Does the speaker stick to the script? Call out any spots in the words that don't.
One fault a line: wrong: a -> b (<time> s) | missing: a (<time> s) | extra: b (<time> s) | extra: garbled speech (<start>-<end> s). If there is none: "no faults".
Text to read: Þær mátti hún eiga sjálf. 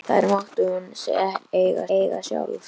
extra: eiga (2.0 s)